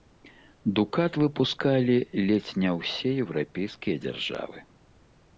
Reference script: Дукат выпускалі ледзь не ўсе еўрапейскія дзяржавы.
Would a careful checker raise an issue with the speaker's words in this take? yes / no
no